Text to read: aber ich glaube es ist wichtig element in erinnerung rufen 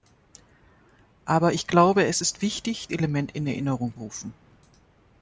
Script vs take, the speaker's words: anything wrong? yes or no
no